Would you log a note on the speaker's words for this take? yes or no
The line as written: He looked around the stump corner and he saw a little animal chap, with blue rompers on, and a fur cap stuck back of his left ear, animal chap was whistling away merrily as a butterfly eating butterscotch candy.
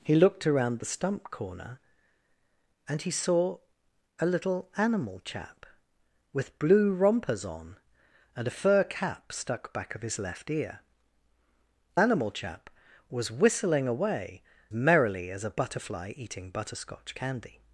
no